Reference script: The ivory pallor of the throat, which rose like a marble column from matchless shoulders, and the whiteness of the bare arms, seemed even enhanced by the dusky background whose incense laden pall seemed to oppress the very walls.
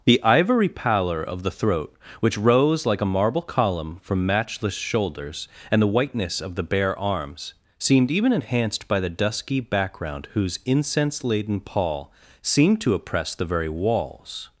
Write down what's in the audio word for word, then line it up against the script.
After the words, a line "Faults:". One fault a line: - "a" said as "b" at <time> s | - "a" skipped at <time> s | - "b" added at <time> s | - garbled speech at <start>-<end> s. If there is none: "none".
The ivory pallor of the throat, which rose like a marble column from matchless shoulders, and the whiteness of the bare arms, seemed even enhanced by the dusky background whose incense laden pall seemed to oppress the very walls.
Faults:
none